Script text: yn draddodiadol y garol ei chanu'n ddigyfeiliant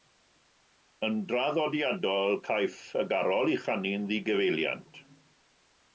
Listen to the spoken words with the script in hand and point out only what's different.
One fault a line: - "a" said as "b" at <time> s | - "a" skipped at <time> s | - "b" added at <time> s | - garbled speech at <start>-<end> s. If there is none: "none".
- "caiff" added at 2.5 s